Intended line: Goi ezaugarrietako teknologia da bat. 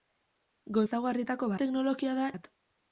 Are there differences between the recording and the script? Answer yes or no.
no